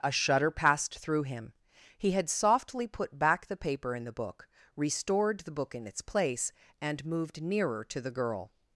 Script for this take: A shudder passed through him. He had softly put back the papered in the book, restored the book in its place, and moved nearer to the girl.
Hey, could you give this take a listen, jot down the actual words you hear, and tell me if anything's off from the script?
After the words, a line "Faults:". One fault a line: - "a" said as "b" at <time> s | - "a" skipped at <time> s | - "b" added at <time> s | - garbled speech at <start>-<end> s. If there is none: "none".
A shudder passed through him. He had softly put back the paper in the book, restored the book in its place, and moved nearer to the girl.
Faults:
- "papered" said as "paper" at 3.6 s